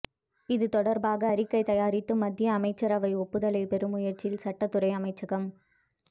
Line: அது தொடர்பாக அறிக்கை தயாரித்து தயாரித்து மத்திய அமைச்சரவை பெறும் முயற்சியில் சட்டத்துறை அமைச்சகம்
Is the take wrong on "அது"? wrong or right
wrong